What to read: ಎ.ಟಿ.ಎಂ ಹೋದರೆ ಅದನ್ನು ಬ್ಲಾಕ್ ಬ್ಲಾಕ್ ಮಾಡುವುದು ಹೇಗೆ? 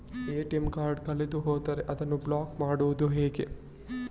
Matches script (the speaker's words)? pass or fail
fail